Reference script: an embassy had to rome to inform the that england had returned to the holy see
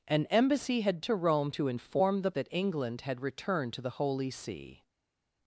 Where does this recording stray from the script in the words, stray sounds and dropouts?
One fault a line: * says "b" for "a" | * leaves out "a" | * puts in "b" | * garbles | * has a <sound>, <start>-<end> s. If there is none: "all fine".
all fine